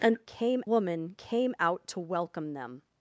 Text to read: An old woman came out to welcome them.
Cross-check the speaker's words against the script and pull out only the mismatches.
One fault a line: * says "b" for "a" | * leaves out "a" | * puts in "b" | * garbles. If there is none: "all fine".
* says "came" for "old"